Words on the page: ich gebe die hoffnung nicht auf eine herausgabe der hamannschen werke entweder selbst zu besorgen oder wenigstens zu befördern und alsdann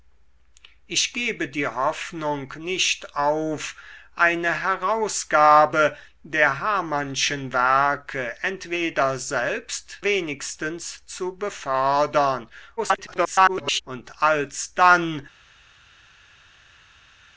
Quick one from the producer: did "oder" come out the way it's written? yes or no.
no